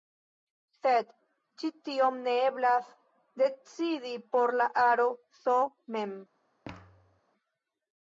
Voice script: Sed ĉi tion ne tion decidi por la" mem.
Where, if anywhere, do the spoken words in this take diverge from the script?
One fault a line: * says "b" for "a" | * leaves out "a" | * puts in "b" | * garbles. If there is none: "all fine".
* says "eblas" for "tion"
* puts in "aro S"